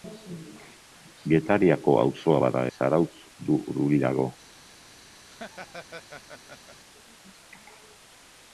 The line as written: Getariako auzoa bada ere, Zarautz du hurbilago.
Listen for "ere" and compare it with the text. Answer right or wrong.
wrong